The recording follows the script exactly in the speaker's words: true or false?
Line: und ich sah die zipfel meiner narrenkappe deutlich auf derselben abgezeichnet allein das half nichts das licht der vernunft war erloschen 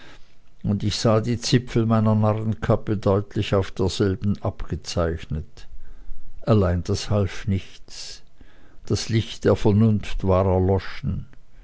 true